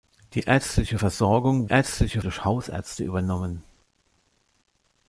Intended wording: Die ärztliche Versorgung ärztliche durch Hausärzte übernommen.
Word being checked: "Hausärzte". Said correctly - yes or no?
yes